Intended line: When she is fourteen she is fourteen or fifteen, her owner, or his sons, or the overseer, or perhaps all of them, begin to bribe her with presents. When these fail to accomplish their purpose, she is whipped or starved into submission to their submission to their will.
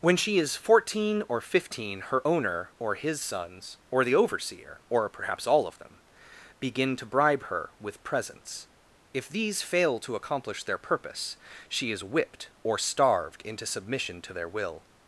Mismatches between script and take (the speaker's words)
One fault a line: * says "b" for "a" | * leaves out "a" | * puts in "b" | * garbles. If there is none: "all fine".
* leaves out "she is fourteen"
* says "If" for "When"
* leaves out "submission to their"